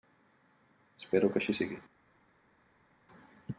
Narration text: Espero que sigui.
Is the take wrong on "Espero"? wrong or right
right